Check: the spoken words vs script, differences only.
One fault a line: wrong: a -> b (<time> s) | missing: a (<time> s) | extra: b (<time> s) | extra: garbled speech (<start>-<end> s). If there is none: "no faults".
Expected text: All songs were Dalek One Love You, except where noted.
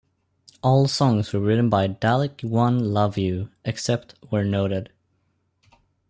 extra: written by (1.4 s)